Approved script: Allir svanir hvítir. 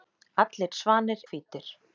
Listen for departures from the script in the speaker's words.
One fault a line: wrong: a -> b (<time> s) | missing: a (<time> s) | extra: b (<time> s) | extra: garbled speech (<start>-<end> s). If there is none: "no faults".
no faults